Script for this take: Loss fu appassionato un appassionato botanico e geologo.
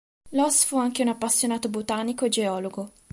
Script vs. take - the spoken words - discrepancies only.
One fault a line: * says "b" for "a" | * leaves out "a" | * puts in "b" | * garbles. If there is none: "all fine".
* says "anche" for "appassionato"